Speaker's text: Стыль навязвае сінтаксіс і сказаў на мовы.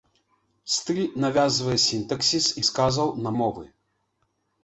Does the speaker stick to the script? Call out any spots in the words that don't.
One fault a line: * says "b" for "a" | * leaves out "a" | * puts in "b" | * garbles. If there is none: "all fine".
all fine